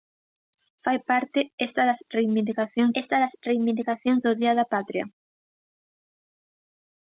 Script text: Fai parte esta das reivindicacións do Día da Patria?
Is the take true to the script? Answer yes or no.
no